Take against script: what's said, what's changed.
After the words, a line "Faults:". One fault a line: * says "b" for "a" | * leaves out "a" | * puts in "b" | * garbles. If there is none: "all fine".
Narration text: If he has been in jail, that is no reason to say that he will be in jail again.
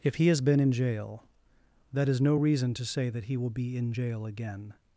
If he has been in jail, that is no reason to say that he will be in jail again.
Faults:
all fine